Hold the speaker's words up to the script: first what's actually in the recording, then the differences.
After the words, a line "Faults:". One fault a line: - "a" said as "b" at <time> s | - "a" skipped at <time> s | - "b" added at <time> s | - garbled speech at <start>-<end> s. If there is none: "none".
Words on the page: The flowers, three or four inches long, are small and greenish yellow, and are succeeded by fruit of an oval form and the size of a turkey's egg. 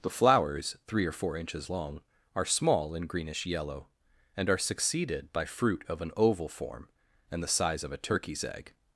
The flowers, three or four inches long, are small and greenish yellow, and are succeeded by fruit of an oval form and the size of a turkey's egg.
Faults:
none